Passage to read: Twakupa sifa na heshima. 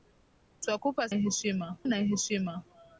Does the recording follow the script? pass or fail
fail